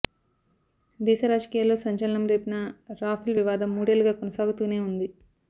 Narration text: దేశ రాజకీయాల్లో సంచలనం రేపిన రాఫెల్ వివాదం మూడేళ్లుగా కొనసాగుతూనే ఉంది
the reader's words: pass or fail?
pass